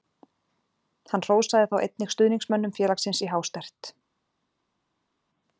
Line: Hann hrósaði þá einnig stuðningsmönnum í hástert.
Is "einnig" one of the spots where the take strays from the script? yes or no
no